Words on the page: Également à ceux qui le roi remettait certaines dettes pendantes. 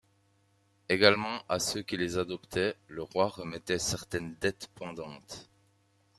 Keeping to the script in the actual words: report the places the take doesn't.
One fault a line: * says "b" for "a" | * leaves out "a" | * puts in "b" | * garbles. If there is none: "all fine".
* puts in "les adoptaient"